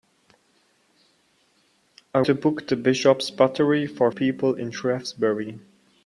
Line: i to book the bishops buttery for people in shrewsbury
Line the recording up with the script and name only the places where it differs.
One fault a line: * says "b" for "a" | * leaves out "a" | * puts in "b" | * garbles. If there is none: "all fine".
all fine